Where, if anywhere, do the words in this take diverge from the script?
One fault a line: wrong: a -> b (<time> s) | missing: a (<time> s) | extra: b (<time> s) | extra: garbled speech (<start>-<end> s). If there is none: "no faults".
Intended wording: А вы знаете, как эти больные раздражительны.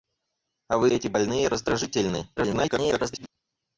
missing: знаете как (0.9 s)
extra: garbled speech (2.4-3.3 s)